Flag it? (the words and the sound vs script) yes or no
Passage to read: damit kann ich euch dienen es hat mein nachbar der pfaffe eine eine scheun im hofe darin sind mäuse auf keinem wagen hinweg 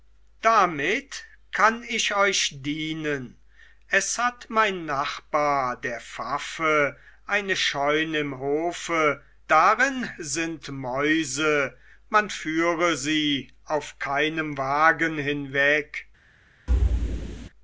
yes